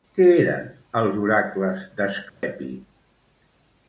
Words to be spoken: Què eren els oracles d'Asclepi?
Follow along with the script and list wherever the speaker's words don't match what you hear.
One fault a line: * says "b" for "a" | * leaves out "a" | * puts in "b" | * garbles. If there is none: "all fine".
all fine